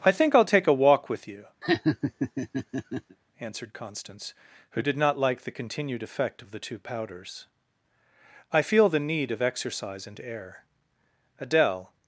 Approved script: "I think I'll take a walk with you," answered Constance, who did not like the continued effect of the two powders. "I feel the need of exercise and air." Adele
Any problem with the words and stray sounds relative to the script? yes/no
yes